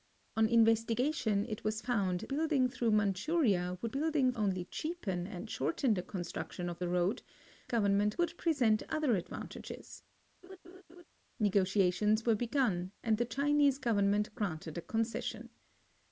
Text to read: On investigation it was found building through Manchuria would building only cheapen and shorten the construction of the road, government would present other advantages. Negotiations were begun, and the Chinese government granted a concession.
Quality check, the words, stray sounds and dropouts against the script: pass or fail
fail